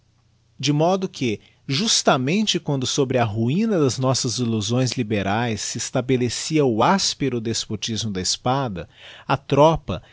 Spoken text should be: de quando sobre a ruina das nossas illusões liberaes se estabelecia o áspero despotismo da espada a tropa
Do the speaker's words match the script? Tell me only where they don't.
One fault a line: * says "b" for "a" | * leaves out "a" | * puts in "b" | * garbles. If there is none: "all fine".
* puts in "modo que justamente"